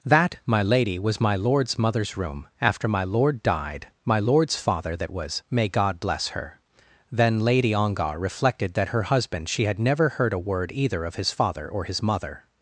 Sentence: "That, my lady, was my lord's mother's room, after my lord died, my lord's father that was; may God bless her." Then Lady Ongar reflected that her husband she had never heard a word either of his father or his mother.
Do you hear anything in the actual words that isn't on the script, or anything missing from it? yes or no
no